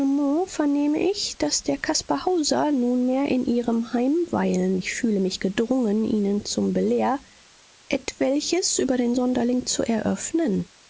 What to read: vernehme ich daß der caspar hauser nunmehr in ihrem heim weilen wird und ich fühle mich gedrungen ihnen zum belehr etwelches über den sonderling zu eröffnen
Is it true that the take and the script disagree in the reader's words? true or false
true